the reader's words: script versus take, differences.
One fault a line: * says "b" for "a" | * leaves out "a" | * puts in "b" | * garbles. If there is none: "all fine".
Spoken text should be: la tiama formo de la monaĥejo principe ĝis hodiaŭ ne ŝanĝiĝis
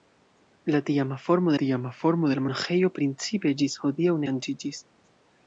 * puts in "tiama formo"
* leaves out "ne"